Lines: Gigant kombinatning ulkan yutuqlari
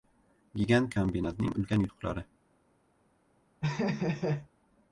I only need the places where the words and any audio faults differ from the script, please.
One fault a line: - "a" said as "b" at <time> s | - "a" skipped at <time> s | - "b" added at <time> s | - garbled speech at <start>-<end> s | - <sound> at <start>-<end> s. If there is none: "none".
- laugh at 3.6-4.5 s